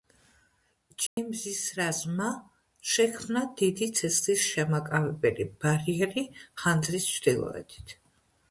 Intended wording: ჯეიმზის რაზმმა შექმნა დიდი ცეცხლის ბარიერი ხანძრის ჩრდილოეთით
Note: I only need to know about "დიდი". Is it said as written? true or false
true